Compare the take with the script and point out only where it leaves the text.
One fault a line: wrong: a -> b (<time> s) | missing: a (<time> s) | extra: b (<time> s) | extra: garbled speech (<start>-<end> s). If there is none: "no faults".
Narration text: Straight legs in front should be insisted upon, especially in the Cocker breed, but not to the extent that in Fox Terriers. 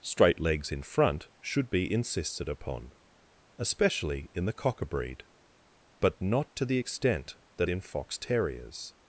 no faults